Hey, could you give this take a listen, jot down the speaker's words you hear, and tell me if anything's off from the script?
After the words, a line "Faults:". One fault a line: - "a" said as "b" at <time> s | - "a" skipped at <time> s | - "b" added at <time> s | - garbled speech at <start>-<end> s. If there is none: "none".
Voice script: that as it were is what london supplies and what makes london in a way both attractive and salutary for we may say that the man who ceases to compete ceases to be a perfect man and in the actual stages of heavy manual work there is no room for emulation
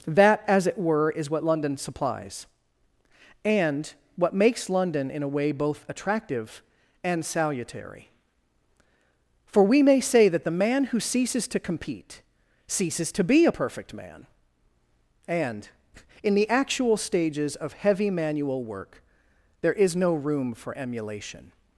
that as it were is what london supplies and what makes london in a way both attractive and salutary for we may say that the man who ceases to compete ceases to be a perfect man and in the actual stages of heavy manual work there is no room for emulation
Faults:
none